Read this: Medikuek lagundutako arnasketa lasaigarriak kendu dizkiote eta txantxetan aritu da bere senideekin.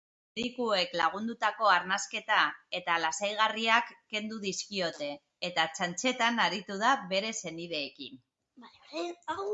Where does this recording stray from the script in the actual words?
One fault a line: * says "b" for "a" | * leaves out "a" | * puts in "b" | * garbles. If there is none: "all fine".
* puts in "eta"